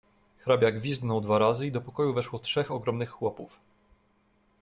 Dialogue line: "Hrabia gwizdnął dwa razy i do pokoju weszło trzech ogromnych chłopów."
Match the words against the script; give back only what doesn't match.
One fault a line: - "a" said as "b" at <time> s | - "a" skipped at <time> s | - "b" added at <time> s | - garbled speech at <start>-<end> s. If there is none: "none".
none